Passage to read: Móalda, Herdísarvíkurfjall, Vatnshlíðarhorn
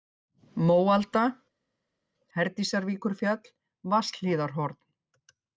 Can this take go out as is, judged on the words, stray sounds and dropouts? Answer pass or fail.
pass